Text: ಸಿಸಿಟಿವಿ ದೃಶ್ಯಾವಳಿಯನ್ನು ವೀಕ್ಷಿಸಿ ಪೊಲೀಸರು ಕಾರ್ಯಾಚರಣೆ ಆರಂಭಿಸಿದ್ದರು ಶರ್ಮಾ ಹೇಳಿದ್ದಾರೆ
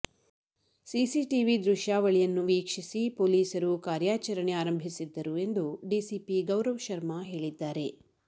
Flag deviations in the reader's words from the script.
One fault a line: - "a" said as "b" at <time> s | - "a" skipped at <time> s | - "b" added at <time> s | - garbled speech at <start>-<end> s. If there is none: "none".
- "ಎಂದು ಡಿಸಿಪಿ ಗೌರವ್" added at 5.4 s